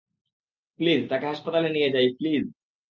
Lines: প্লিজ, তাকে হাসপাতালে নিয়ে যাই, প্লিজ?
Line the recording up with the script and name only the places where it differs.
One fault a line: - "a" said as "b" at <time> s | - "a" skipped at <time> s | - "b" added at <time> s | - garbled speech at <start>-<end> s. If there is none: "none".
none